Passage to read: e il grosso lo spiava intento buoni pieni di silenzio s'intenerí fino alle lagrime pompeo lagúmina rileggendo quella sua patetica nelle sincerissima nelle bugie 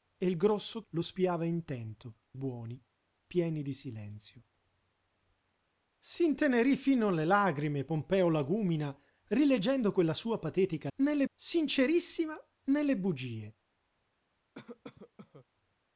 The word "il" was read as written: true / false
true